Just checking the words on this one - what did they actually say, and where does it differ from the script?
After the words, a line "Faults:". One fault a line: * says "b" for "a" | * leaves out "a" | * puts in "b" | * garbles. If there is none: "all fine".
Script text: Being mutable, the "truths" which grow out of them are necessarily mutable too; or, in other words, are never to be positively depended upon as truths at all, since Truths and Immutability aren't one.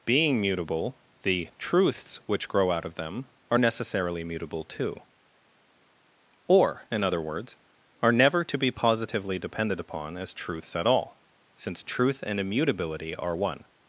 Being mutable, the "truths" which grow out of them are necessarily mutable too; or, in other words, are never to be positively depended upon as truths at all, since Truth and Immutability are one.
Faults:
* says "Truth" for "Truths"
* says "are" for "aren't"